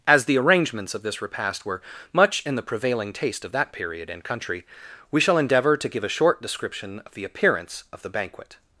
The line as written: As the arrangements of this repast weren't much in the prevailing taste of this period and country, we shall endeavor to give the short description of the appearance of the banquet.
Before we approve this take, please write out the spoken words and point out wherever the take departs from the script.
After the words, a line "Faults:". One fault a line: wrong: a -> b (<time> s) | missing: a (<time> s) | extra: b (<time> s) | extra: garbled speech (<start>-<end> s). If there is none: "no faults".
As the arrangements of this repast were much in the prevailing taste of that period and country, we shall endeavor to give a short description of the appearance of the banquet.
Faults:
wrong: weren't -> were (1.6 s)
wrong: this -> that (3.5 s)
wrong: the -> a (6.0 s)